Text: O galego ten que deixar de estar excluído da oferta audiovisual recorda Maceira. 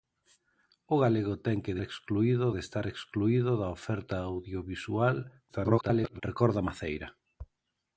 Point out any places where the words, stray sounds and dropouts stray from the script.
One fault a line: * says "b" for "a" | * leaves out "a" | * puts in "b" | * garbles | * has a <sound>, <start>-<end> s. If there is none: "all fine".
* says "excluído" for "deixar"
* garbles